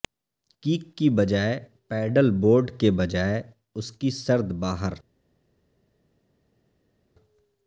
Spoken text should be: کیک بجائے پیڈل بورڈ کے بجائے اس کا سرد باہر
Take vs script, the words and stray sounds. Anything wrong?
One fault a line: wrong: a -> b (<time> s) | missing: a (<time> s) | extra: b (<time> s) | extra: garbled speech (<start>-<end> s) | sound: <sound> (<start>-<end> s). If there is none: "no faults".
extra: کی (1.0 s)
wrong: کا -> کی (3.9 s)